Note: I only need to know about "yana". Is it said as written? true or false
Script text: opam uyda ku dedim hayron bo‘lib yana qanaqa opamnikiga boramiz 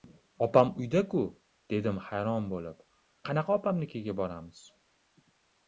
false